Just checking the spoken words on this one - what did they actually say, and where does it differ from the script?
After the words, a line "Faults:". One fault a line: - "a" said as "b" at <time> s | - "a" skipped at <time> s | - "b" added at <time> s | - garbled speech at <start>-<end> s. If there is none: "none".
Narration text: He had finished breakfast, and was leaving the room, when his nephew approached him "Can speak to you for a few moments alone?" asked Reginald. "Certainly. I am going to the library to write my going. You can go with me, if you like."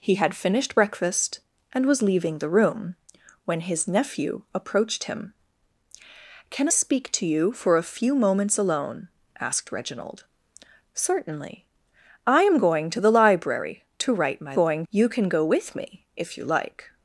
He had finished breakfast, and was leaving the room, when his nephew approached him "Can speak to you for a few moments alone?" asked Reginald. "Certainly. I am going to the library to write my going. You can go with me, if you like."
Faults:
none